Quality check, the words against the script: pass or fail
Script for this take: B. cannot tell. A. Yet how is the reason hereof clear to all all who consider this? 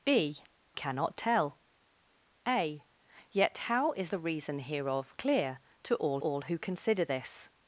pass